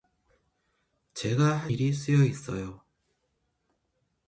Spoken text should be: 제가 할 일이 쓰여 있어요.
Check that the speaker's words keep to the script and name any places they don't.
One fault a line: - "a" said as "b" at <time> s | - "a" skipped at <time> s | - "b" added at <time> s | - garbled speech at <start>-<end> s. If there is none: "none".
none